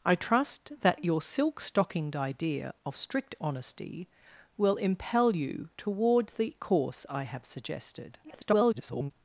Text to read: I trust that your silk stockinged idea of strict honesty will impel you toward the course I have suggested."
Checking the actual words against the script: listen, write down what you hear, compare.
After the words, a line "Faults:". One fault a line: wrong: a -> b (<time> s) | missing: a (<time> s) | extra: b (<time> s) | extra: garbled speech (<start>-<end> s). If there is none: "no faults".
I trust that your silk stockinged idea of strict honesty will impel you toward the course I have suggested." [garbled]
Faults:
extra: garbled speech (8.2-9.1 s)